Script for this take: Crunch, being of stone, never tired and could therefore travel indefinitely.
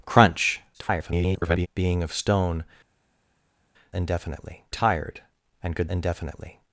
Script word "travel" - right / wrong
wrong